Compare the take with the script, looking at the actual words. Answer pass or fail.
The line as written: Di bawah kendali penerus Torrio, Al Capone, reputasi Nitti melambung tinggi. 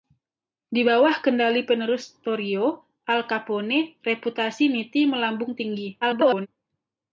fail